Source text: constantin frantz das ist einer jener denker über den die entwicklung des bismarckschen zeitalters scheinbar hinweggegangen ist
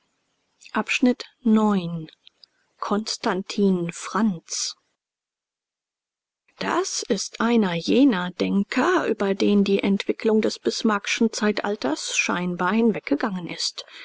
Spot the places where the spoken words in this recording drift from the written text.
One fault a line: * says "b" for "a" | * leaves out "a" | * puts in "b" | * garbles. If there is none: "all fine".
all fine